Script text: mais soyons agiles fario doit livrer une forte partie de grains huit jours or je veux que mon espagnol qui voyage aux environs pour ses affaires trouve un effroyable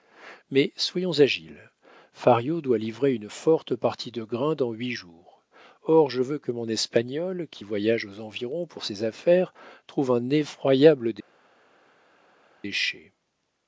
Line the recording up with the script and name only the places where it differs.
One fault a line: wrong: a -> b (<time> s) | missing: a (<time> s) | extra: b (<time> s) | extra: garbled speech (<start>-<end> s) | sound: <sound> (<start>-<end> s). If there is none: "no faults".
extra: dans (4.5 s)